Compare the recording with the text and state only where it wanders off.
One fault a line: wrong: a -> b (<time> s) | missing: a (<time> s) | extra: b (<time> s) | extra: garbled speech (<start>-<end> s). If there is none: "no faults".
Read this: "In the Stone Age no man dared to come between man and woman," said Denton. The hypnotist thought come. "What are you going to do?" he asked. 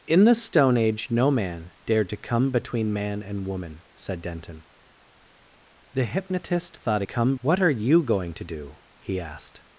no faults